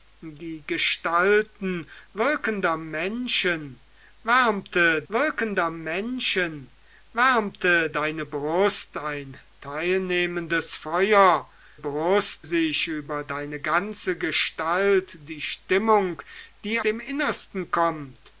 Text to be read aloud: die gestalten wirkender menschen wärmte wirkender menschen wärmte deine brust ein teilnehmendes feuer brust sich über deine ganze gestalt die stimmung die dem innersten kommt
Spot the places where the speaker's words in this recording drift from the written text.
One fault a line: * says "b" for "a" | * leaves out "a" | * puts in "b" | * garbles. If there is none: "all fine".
all fine